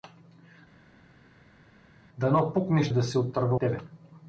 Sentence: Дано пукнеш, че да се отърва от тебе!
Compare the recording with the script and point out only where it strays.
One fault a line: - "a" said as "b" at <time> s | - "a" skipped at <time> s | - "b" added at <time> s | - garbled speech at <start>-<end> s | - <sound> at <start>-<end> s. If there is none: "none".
- "че" skipped at 2.9 s
- "от" skipped at 3.6 s